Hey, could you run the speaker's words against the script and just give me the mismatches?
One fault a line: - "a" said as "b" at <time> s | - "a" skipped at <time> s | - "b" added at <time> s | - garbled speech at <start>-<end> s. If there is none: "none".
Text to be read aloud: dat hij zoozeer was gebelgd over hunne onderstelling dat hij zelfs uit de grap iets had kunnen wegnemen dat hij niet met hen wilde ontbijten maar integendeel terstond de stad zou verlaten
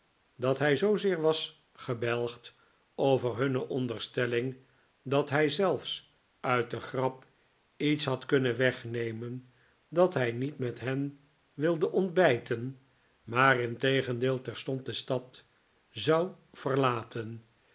none